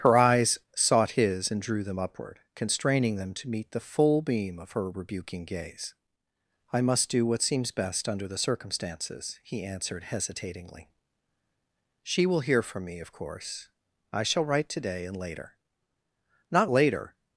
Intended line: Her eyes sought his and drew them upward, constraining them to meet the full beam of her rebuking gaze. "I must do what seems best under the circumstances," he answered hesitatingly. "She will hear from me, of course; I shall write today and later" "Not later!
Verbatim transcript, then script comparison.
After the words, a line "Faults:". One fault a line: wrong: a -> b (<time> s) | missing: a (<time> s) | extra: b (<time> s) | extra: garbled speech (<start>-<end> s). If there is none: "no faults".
Her eyes sought his and drew them upward, constraining them to meet the full beam of her rebuking gaze. "I must do what seems best under the circumstances," he answered hesitatingly. "She will hear from me, of course; I shall write today and later" "Not later!
Faults:
no faults